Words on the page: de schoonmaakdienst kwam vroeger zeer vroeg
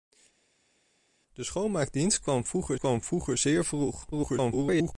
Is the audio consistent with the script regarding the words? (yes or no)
no